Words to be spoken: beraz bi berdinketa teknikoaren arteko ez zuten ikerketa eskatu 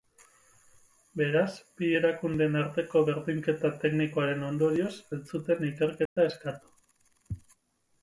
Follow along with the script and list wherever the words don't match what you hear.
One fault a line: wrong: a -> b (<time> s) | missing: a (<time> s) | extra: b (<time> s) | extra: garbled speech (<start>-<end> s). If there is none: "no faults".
extra: erakundeen arteko (2.0 s)
wrong: arteko -> ondorioz (4.5 s)